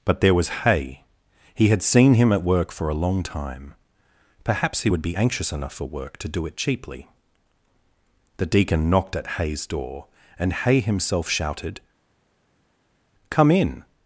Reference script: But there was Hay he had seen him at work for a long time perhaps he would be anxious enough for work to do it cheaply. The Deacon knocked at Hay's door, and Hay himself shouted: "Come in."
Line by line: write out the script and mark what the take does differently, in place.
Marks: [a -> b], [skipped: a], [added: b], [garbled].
But there was Hay he had seen him at work for a long time perhaps he would be anxious enough for work to do it cheaply. The Deacon knocked at Hay's door, and Hay himself shouted: "Come in."